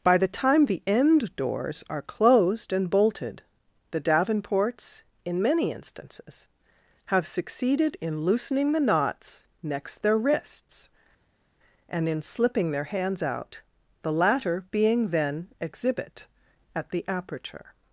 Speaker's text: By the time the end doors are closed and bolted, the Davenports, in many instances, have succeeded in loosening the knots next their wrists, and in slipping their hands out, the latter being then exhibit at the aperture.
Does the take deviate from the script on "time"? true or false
false